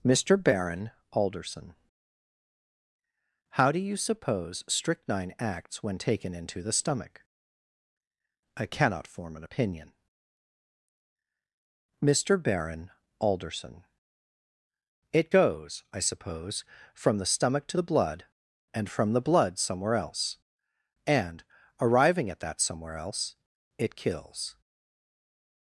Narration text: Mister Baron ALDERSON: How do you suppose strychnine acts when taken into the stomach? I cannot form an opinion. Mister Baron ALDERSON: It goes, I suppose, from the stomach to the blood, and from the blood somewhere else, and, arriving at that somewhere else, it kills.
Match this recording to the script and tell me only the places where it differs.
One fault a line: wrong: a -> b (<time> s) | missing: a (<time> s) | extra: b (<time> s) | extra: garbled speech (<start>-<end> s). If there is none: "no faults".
no faults